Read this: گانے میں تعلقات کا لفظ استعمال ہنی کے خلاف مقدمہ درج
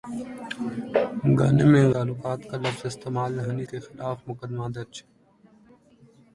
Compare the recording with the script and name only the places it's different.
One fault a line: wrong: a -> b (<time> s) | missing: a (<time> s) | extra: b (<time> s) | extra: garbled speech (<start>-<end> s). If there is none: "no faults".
no faults